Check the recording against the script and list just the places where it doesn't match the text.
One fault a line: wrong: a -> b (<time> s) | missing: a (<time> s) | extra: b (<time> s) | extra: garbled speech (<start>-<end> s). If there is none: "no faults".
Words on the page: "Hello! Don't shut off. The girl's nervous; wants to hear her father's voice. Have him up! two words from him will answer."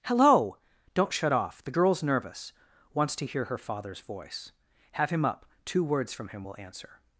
no faults